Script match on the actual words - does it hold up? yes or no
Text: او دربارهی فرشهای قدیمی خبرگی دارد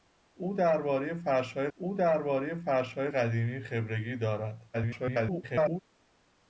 no